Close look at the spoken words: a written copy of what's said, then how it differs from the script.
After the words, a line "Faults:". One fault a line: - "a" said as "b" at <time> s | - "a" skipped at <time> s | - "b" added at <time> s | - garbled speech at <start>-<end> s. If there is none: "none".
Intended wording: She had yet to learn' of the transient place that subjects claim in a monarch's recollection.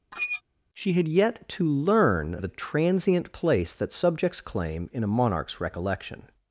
She had yet to learn' of the transient place that subjects claim in a monarch's recollection.
Faults:
none